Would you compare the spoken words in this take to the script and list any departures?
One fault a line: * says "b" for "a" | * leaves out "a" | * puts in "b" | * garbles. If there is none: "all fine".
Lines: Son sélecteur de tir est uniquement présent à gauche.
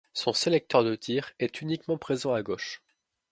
all fine